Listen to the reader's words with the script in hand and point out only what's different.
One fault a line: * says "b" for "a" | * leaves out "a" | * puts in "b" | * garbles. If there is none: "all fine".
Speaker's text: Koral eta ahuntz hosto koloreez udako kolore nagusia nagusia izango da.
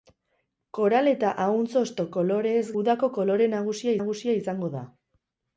all fine